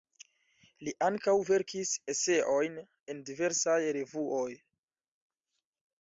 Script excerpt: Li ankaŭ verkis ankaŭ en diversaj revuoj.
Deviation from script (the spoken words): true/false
true